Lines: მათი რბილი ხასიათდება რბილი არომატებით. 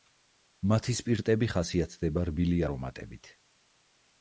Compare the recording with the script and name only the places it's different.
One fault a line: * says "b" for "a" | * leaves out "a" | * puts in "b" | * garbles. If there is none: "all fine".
* says "სპირტები" for "რბილი"